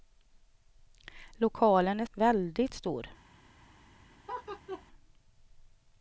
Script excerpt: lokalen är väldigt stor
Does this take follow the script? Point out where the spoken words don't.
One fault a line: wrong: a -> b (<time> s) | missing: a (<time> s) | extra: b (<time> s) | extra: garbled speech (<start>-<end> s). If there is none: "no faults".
no faults